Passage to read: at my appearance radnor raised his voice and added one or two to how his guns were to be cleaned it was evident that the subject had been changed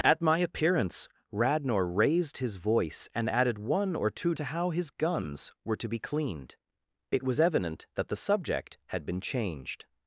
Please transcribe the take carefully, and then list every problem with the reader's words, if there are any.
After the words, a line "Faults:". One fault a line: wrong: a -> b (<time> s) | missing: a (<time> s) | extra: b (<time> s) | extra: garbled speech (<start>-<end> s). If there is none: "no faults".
at my appearance radnor raised his voice and added one or two to how his guns were to be cleaned it was evident that the subject had been changed
Faults:
no faults